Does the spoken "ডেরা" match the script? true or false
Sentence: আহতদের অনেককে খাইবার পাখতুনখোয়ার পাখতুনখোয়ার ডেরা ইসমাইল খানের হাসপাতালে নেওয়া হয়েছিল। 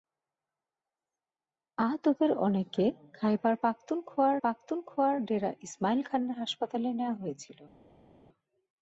true